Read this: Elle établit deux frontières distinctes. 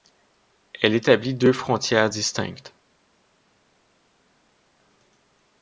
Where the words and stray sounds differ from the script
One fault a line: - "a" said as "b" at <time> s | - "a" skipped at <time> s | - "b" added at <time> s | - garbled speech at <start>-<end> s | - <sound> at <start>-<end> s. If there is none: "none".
none